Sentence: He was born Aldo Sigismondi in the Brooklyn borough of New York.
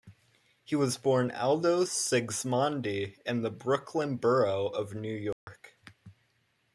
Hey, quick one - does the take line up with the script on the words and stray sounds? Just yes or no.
no